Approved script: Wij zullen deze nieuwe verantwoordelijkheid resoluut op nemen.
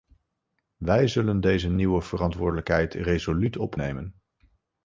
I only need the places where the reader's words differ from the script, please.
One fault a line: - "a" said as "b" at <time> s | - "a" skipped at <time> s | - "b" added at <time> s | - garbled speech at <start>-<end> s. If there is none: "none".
none